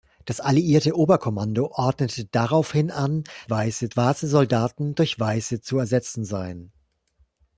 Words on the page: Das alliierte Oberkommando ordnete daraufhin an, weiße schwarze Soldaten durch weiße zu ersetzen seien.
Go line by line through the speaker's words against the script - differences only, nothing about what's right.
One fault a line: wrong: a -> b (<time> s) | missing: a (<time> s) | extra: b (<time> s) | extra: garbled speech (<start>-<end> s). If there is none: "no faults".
no faults